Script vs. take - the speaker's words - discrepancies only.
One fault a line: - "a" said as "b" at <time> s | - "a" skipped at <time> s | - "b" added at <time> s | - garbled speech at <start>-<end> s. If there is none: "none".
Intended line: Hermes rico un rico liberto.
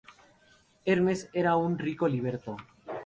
- "rico" said as "era" at 1.3 s